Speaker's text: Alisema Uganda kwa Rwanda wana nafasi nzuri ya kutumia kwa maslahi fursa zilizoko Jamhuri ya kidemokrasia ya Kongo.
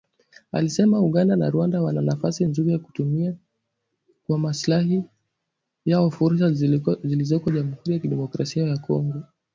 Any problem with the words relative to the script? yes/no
yes